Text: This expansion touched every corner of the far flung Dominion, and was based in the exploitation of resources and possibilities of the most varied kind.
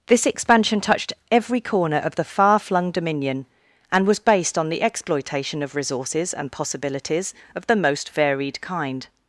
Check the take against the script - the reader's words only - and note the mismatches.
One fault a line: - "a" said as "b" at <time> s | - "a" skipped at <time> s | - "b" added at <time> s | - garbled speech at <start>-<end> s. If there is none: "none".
- "in" said as "on" at 4.6 s